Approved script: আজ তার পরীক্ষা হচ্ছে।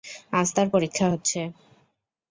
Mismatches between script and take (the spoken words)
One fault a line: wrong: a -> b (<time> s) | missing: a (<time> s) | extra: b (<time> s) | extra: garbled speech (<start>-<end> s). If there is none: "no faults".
no faults